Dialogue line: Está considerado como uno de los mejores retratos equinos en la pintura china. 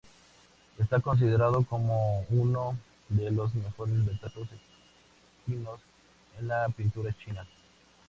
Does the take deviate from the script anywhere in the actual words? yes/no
no